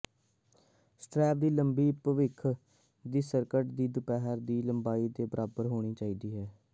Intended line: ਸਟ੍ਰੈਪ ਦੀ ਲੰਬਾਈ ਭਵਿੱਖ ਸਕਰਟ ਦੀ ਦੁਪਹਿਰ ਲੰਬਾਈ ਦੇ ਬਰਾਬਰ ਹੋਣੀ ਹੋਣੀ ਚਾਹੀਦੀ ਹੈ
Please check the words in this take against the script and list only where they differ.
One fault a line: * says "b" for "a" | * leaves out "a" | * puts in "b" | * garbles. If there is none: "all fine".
* puts in "ਦੀ"
* puts in "ਦੀ"
* leaves out "ਹੋਣੀ"